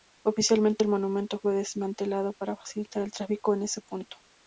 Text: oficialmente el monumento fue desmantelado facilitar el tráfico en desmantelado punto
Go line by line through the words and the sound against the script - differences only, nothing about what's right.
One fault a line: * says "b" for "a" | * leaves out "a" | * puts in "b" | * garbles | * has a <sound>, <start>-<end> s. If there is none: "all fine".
* puts in "para"
* says "ese" for "desmantelado"